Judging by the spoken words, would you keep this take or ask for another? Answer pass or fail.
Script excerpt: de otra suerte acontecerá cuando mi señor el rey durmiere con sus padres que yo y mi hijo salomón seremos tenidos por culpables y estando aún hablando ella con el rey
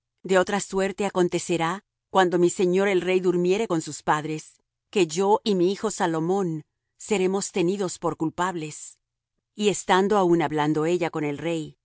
pass